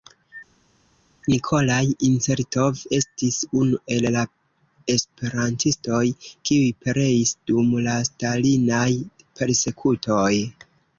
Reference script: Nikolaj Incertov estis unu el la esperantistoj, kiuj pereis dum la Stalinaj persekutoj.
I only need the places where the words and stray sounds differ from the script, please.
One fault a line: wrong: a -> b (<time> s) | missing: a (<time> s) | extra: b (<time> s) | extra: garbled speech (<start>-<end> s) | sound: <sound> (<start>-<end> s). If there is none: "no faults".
no faults